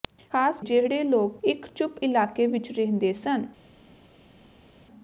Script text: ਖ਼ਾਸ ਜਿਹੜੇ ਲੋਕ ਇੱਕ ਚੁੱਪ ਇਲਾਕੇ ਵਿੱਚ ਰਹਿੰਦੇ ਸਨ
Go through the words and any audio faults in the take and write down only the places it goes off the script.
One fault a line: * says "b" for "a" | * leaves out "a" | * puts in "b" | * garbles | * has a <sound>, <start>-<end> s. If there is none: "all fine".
all fine